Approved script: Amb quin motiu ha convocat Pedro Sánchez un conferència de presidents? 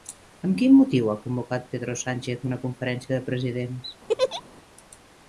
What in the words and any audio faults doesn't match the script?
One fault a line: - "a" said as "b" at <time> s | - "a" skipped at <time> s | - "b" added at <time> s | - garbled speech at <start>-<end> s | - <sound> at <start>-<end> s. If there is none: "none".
- "un" said as "una" at 2.5 s
- laugh at 4.1-4.4 s